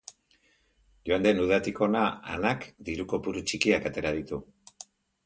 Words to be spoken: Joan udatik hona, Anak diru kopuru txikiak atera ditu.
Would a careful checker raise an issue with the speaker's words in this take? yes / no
yes